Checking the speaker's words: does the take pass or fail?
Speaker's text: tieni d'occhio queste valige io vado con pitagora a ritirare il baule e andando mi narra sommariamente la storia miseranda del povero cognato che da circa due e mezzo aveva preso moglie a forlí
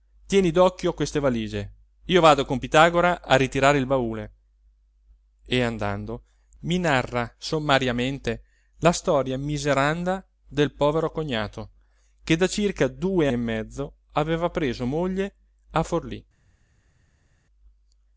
pass